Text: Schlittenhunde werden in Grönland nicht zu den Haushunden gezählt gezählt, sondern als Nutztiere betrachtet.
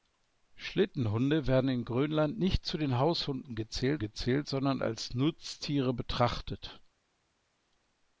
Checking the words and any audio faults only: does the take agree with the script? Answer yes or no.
yes